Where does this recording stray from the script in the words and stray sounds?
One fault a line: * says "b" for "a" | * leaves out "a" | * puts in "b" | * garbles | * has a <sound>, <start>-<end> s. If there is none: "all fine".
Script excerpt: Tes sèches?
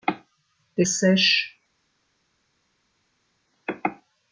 all fine